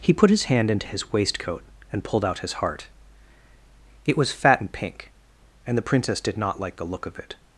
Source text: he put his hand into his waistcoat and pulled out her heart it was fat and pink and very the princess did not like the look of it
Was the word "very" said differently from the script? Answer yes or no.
yes